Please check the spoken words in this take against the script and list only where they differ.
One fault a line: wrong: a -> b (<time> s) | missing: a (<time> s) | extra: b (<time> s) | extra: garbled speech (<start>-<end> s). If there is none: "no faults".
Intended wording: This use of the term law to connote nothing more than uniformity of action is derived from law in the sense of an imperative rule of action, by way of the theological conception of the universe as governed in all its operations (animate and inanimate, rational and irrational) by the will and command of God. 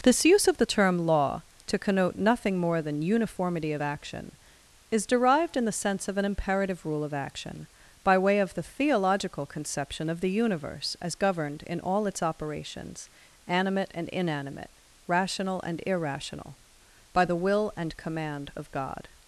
missing: from law (5.6 s)